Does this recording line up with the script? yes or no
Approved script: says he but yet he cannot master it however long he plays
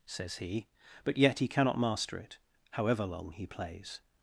yes